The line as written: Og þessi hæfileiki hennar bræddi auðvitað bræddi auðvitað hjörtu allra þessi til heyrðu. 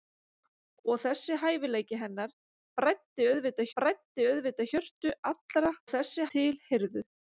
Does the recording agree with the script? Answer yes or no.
yes